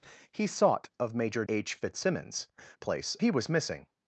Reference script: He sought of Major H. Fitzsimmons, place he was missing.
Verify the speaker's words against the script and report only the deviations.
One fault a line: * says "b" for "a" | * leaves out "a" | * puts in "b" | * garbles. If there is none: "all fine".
all fine